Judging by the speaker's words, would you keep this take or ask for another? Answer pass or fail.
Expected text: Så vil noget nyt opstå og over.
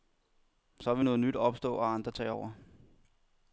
fail